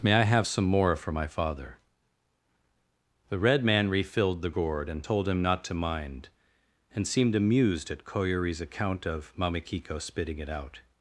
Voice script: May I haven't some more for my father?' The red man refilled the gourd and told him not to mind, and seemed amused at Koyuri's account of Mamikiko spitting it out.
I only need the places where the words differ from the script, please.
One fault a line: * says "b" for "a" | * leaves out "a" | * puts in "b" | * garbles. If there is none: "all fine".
* says "have" for "haven't"